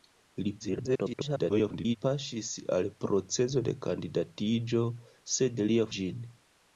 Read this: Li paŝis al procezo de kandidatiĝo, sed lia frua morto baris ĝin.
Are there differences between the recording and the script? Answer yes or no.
yes